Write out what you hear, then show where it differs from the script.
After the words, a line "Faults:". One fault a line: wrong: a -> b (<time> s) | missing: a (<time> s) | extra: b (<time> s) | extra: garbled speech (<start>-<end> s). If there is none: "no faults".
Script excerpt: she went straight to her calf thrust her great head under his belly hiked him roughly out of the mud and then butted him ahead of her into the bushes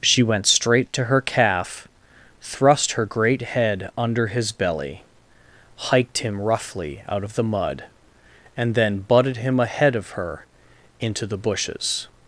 she went straight to her calf thrust her great head under his belly hiked him roughly out of the mud and then butted him ahead of her into the bushes
Faults:
no faults